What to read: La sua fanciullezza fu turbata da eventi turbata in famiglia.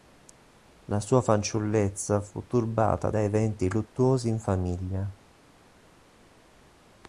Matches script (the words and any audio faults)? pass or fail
fail